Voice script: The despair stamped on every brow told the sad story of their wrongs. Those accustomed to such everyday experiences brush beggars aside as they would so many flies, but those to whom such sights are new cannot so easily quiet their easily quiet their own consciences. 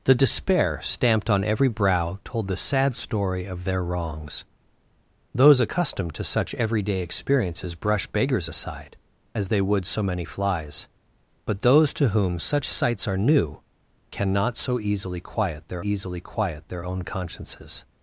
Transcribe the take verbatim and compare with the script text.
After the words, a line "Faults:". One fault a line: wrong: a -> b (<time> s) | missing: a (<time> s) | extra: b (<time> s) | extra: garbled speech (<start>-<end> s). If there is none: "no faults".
The despair stamped on every brow told the sad story of their wrongs. Those accustomed to such everyday experiences brush beggars aside as they would so many flies, but those to whom such sights are new cannot so easily quiet their easily quiet their own consciences.
Faults:
no faults